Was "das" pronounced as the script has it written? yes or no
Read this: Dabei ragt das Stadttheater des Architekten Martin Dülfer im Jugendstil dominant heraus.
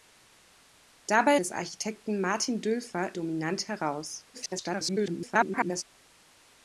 no